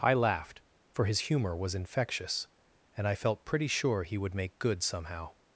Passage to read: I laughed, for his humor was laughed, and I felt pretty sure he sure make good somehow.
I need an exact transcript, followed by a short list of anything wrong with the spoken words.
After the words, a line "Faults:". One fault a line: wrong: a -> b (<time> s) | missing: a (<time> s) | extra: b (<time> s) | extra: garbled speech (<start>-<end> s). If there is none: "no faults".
I laughed, for his humor was infectious, and I felt pretty sure he would make good somehow.
Faults:
wrong: laughed -> infectious (1.8 s)
wrong: sure -> would (4.2 s)